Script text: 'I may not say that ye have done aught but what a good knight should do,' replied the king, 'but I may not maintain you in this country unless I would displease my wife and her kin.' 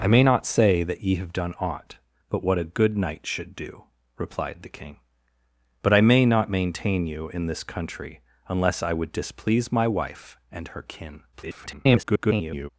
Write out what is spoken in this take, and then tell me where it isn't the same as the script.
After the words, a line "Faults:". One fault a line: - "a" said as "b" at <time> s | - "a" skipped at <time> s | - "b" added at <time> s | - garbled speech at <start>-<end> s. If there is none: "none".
'I may not say that ye have done aught but what a good knight should do,' replied the king, 'but I may not maintain you in this country unless I would displease my wife and her kin.' [garbled]
Faults:
- garbled speech at 11.3-12.7 s